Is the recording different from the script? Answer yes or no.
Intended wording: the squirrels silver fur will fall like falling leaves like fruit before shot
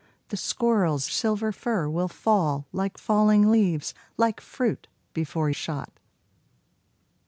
no